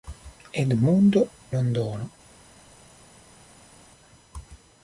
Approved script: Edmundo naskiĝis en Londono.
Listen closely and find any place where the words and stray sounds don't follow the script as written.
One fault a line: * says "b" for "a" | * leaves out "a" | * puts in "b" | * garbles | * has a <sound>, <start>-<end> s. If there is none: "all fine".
* leaves out "naskiĝis en"